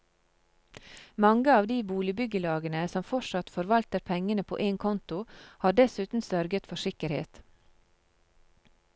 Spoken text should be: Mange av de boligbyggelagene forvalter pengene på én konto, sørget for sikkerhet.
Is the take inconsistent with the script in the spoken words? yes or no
yes